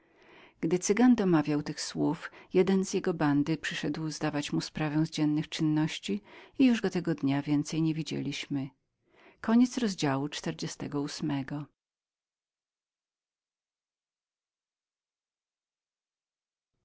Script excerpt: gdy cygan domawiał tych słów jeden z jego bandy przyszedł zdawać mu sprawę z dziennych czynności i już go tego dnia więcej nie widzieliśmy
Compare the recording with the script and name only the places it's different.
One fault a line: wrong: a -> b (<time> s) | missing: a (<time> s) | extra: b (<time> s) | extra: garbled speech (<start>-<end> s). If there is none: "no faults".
no faults